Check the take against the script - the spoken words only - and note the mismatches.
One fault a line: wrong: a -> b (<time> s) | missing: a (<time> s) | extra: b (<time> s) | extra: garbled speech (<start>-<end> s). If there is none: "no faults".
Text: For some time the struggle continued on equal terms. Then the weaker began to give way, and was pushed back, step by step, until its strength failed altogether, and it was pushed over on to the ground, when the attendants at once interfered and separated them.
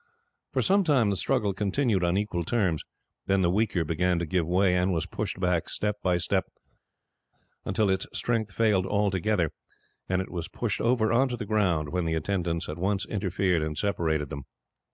no faults